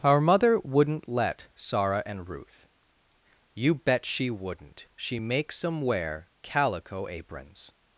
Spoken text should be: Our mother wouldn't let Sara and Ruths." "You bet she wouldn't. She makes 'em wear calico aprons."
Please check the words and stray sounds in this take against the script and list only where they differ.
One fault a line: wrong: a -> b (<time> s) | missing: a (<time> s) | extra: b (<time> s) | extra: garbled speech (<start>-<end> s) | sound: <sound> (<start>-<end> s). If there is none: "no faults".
wrong: Ruths -> Ruth (2.3 s)